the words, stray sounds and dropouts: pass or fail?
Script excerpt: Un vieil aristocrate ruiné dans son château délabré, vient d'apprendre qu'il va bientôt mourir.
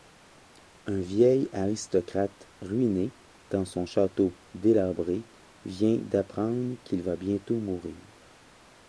pass